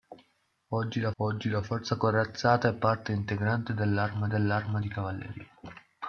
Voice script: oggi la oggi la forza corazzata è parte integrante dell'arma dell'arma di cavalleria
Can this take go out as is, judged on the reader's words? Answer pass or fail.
pass